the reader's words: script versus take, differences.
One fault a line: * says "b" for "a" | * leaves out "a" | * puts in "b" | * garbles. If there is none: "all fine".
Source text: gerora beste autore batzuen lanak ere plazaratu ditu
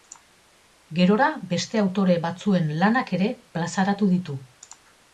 all fine